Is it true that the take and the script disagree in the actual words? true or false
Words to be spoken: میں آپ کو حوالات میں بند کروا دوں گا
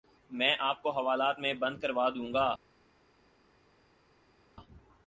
false